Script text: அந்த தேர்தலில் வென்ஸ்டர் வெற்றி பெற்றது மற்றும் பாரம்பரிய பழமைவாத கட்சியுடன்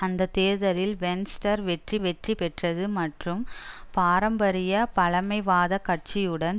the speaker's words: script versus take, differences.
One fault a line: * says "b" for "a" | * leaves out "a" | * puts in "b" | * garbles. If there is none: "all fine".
* puts in "வெற்றி"